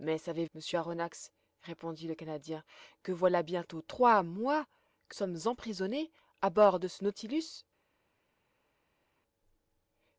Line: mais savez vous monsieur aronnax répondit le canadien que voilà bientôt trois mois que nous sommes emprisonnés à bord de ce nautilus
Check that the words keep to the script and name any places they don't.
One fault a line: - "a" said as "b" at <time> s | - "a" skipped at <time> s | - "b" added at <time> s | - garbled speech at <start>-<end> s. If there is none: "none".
- "vous" skipped at 0.5 s
- "nous" skipped at 5.2 s